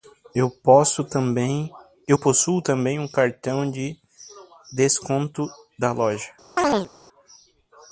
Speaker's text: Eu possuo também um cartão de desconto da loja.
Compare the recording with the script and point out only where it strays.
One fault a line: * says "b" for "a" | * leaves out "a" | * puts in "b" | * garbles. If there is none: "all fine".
all fine